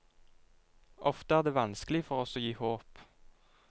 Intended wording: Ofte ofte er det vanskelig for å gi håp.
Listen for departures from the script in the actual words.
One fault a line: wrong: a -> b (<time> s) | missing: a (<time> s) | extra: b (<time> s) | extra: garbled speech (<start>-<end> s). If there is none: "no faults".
missing: ofte (1.4 s)
extra: oss (2.2 s)